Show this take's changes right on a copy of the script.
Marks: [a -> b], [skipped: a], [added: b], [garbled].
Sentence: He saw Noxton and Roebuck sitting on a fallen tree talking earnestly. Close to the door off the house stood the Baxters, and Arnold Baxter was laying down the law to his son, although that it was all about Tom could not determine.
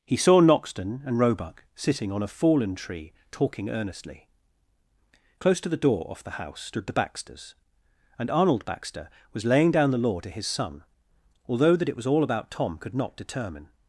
He saw Noxton and Roebuck sitting on a fallen tree talking earnestly. Close to the door off the house stood the Baxters, and Arnold Baxter was laying down the law to his son, although that it was all about Tom could not determine.